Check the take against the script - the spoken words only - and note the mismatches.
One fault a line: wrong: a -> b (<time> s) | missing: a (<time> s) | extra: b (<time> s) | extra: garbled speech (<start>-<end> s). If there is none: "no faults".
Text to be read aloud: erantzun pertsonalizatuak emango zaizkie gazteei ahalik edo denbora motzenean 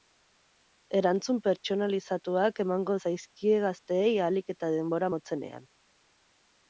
wrong: edo -> eta (4.5 s)